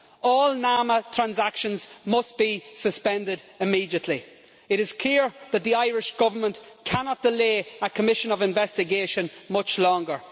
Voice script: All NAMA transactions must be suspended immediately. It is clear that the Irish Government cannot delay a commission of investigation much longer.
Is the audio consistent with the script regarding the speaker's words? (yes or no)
yes